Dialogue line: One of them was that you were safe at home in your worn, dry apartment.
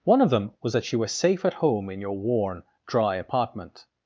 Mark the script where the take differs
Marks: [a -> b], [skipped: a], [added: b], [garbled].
One of them was that you were safe at home in your worn, dry apartment.